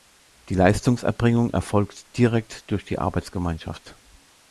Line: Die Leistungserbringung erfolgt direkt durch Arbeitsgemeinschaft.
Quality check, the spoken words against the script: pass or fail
fail